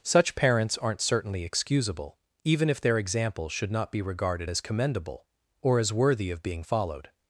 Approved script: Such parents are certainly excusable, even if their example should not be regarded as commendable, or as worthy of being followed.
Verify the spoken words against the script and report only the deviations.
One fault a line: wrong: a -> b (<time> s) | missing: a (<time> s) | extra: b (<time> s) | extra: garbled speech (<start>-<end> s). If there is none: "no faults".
wrong: are -> aren't (0.8 s)